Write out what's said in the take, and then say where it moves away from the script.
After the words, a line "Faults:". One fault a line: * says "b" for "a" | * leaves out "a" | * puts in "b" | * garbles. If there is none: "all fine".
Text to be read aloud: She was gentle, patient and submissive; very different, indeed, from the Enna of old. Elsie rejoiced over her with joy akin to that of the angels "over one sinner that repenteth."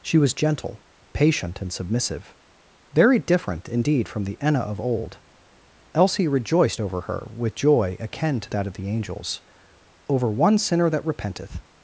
She was gentle, patient and submissive; very different, indeed, from the Enna of old. Elsie rejoiced over her with joy akin to that of the angels "over one sinner that repenteth."
Faults:
all fine